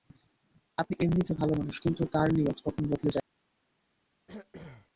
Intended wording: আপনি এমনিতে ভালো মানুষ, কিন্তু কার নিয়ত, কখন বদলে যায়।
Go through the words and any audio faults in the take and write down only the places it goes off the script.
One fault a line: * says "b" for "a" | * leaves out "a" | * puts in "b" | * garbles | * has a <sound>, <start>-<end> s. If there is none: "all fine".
* has a throat clearing, 4.3-4.9 s